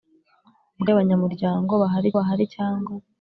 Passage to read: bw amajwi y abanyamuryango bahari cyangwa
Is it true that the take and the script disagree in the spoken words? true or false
true